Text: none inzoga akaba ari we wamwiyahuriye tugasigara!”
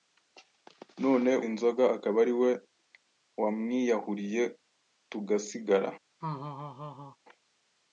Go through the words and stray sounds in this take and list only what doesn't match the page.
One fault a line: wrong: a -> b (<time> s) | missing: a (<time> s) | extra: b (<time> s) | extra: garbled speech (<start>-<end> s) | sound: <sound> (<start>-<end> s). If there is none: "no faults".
sound: laugh (6.2-7.2 s)